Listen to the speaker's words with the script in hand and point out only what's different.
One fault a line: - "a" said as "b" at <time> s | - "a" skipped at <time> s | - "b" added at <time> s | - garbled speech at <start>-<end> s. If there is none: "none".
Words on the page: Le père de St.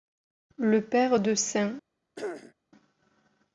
none